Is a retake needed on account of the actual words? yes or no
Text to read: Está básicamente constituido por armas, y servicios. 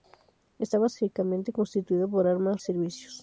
no